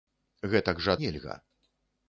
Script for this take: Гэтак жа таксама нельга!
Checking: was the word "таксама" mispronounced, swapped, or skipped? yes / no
yes